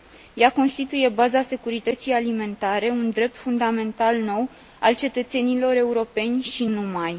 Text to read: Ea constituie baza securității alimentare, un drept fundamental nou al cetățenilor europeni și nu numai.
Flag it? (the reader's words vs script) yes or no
yes